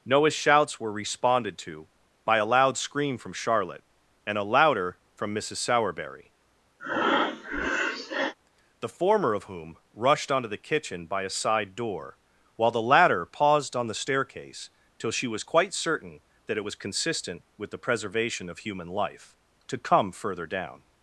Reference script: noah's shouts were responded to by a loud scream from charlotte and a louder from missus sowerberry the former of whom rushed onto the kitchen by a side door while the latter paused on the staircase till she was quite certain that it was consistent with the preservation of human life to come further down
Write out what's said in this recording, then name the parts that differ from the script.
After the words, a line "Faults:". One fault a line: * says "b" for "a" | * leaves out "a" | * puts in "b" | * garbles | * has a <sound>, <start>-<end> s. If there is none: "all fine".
noah's shouts were responded to by a loud scream from charlotte and a louder from missus sowerberry the former of whom rushed onto the kitchen by a side door while the latter paused on the staircase till she was quite certain that it was consistent with the preservation of human life to come further down
Faults:
* has a breath, 6.8-8.3 s